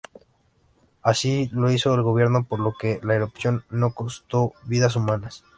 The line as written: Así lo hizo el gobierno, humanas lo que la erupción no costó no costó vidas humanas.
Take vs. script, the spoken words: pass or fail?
fail